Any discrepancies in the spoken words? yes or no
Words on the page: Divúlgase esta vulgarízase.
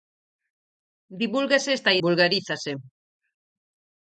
no